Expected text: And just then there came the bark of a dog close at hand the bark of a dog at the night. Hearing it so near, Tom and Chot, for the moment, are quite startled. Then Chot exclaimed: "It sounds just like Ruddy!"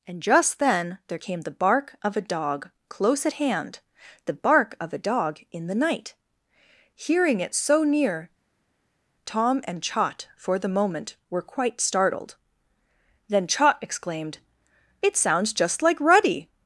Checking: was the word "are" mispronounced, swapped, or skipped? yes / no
yes